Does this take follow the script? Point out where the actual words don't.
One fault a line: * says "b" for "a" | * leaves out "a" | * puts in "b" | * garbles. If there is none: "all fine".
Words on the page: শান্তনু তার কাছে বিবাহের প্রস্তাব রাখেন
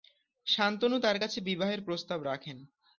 all fine